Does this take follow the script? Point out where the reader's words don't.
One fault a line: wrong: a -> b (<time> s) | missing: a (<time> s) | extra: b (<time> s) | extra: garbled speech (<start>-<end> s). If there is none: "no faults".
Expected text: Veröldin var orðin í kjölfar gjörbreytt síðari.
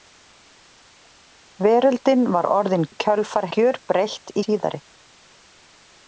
no faults